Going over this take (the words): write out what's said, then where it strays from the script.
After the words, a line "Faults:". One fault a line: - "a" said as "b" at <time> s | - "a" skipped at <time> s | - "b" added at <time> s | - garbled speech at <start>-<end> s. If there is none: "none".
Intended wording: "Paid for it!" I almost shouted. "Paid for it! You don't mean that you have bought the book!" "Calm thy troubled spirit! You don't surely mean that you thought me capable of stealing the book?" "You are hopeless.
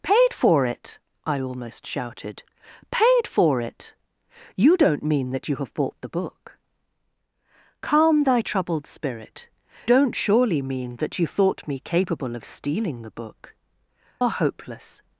"Paid for it!" I almost shouted. "Paid for it! You don't mean that you have bought the book!" "Calm thy troubled spirit! Don't surely mean that you thought me capable of stealing the book?" "Are hopeless.
Faults:
- "You" skipped at 9.5 s
- "You" skipped at 13.5 s